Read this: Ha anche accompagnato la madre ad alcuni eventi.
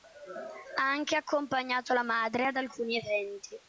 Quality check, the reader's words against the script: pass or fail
pass